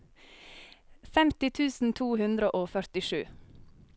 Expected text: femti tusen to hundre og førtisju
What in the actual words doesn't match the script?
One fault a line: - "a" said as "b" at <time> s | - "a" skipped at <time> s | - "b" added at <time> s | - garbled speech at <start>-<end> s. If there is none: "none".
none